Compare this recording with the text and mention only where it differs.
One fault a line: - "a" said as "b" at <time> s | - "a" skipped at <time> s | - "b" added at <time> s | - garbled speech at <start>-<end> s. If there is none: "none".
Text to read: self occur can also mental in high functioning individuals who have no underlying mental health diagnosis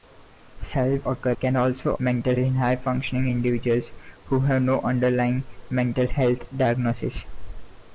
none